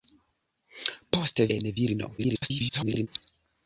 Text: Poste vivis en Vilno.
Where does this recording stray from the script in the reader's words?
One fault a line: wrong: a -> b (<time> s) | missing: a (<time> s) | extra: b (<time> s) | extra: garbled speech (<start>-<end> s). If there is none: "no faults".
missing: vivis (1.4 s)
extra: garbled speech (2.2-3.1 s)